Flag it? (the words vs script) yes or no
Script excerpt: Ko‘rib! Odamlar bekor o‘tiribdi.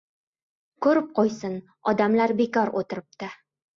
yes